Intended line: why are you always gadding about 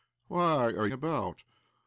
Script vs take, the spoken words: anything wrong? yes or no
yes